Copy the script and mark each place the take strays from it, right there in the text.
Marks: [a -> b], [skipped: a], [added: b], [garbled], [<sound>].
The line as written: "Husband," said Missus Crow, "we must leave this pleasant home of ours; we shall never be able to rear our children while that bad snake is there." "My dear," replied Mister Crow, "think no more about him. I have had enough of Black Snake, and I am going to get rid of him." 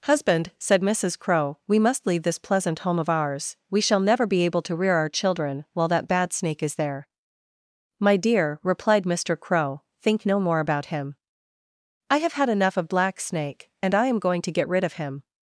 "Husband," said Missus Crow, "we must leave this pleasant home of ours; we shall never be able to rear our children while that bad snake is there." "My dear," replied Mister Crow, "think no more about him. I have had enough of Black Snake, and I am going to get rid of him."